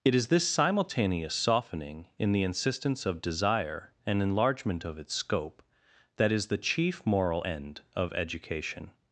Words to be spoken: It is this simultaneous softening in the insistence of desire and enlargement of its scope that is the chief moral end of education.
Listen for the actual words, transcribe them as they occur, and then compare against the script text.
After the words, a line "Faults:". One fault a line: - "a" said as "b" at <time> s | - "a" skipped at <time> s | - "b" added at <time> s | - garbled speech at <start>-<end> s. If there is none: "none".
It is this simultaneous softening in the insistence of desire and enlargement of its scope that is the chief moral end of education.
Faults:
none